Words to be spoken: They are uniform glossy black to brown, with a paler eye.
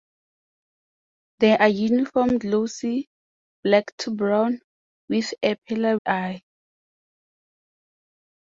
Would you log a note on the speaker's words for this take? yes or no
no